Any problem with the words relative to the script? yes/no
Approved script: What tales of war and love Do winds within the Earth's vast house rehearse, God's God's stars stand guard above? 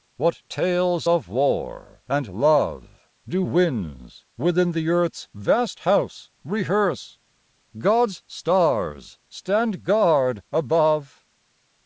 yes